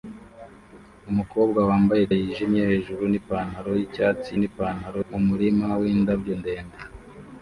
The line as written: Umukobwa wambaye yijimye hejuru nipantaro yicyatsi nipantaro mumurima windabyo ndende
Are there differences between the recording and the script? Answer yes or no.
no